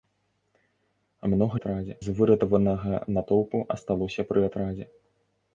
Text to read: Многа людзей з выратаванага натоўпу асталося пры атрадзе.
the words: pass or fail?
fail